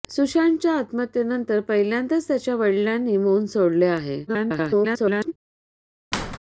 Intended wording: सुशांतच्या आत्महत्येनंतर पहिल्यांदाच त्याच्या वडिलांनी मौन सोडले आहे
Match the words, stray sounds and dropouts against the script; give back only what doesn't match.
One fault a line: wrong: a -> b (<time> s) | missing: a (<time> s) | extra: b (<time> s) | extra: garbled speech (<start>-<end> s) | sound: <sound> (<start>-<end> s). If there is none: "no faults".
extra: garbled speech (4.3-5.3 s)
sound: squeak (6.1-6.4 s)